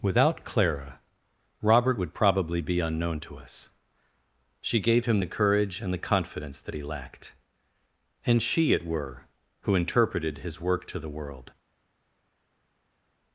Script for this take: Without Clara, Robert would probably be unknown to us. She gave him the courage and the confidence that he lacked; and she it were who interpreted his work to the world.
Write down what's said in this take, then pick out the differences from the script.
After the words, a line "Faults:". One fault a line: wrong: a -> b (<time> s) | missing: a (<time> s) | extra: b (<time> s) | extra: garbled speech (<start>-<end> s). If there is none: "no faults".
Without Clara, Robert would probably be unknown to us. She gave him the courage and the confidence that he lacked; and she it were who interpreted his work to the world.
Faults:
no faults